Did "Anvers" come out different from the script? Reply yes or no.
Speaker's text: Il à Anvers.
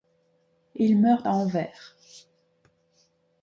no